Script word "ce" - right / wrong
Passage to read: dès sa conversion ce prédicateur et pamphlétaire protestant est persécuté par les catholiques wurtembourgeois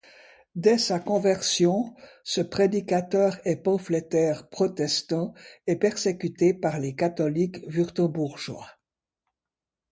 right